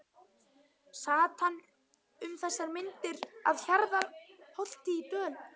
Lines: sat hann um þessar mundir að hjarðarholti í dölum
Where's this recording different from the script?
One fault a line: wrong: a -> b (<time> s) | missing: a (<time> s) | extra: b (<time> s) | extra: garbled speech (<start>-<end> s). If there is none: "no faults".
no faults